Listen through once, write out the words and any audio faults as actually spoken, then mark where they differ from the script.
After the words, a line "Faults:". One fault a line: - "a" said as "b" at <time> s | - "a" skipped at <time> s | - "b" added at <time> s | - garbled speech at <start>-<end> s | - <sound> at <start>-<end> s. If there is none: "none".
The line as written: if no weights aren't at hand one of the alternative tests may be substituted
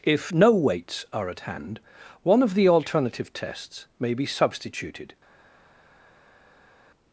if no weights are at hand one of the alternative tests may be substituted
Faults:
- "aren't" said as "are" at 1.1 s